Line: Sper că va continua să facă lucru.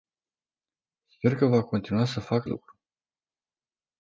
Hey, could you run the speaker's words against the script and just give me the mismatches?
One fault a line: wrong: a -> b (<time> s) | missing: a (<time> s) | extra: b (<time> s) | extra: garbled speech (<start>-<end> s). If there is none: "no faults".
no faults